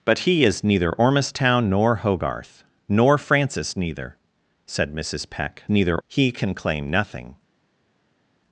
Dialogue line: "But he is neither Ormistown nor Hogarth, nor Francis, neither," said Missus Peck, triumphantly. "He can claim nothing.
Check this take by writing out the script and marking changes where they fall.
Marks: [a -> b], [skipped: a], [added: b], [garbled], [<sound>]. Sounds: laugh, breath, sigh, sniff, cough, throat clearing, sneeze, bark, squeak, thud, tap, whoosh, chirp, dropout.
"But he is neither Ormistown nor Hogarth, nor Francis, neither," said Missus Peck, [triumphantly. -> neither] "He can claim nothing.